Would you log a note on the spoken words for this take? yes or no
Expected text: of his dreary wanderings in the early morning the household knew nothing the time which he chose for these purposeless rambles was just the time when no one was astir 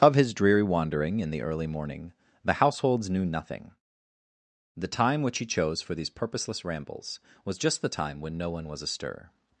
yes